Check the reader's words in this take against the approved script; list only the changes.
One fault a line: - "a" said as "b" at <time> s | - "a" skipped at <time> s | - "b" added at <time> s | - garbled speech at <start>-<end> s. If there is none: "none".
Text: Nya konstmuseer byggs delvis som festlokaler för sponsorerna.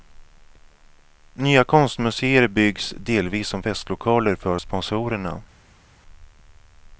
none